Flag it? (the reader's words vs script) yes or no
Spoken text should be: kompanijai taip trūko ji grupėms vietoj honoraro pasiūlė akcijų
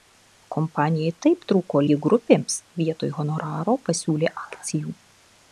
no